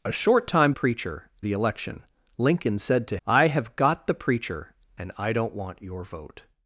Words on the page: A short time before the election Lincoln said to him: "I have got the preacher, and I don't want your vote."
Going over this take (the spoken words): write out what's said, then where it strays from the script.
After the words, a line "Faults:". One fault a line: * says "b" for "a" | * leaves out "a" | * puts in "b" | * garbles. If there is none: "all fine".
A short time preacher the election Lincoln said to: "I have got the preacher, and I don't want your vote."
Faults:
* says "preacher" for "before"
* leaves out "him"